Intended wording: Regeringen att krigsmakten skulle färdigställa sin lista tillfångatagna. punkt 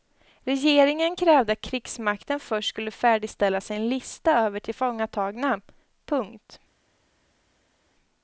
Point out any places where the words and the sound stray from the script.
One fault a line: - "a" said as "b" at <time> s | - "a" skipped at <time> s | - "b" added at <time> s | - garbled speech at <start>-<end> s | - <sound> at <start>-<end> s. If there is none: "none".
- "krävde" added at 1.1 s
- "först" added at 2.4 s
- "över" added at 4.4 s